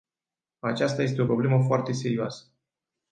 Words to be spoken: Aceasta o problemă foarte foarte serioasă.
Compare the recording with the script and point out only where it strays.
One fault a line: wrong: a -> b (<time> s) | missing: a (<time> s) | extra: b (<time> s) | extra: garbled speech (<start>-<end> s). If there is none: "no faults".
extra: este (1.0 s)
missing: foarte (1.9 s)